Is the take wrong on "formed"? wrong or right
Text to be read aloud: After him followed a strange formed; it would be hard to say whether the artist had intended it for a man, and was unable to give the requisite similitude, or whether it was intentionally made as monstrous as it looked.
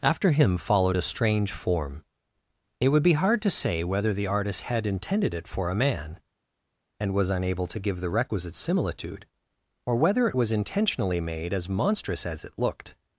wrong